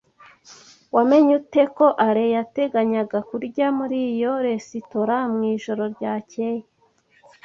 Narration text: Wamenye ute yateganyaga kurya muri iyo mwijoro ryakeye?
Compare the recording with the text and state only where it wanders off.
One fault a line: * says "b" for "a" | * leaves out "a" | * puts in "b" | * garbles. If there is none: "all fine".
* puts in "ko Alain"
* puts in "resitora"